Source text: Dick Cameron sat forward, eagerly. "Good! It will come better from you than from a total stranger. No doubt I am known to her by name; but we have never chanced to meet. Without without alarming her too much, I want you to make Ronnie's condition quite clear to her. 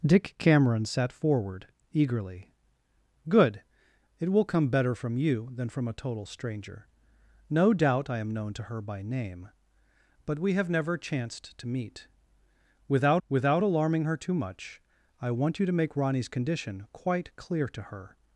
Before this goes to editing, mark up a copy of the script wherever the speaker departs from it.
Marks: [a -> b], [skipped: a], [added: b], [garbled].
Dick Cameron sat forward, eagerly. "Good! It will come better from you than from a total stranger. No doubt I am known to her by name; but we have never chanced to meet. Without without alarming her too much, I want you to make Ronnie's condition quite clear to her.